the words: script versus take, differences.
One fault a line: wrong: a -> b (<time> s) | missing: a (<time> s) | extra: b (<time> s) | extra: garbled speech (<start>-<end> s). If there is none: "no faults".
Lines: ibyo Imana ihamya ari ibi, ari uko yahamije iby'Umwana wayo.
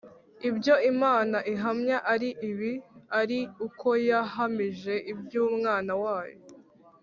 no faults